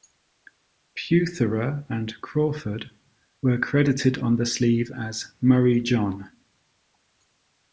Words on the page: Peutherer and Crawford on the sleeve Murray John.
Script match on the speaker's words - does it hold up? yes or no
no